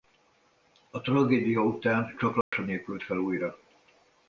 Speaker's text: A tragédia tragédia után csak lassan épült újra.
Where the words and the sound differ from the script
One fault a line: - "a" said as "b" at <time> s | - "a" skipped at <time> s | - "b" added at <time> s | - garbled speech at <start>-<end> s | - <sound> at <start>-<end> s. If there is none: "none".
- "tragédia" skipped at 1.6 s
- dropout at 2.4-2.5 s
- "fel" added at 3.0 s